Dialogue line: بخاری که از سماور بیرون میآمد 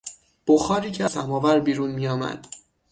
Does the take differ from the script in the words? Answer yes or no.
yes